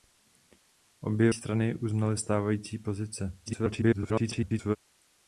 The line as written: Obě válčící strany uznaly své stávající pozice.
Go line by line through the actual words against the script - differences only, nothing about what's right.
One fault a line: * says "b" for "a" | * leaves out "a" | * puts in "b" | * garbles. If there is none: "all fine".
* leaves out "válčící"
* leaves out "své"
* garbles